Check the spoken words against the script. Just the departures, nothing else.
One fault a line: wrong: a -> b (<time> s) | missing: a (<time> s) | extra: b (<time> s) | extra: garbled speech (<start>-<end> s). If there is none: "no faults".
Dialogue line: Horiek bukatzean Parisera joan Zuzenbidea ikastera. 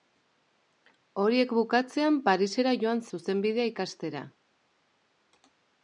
no faults